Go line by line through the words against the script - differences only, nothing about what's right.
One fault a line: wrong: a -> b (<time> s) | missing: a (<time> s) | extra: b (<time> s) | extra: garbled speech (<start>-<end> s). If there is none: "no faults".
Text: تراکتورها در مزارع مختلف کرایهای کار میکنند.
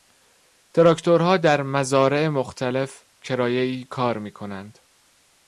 no faults